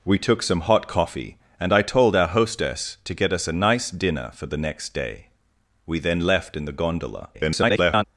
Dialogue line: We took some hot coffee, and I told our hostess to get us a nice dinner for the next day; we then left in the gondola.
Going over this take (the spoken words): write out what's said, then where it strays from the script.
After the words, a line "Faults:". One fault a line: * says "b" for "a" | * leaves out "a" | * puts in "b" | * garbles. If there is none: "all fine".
We took some hot coffee, and I told our hostess to get us a nice dinner for the next day; we then left in the gondola. [garbled]
Faults:
* garbles